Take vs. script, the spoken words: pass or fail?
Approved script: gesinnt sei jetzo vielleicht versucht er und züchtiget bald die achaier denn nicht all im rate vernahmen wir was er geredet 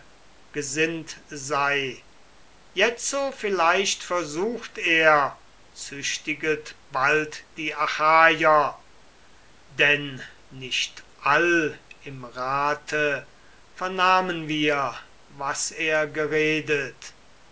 fail